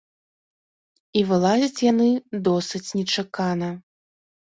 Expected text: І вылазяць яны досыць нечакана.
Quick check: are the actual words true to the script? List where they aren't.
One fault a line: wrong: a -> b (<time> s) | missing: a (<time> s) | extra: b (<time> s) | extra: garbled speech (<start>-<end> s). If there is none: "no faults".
no faults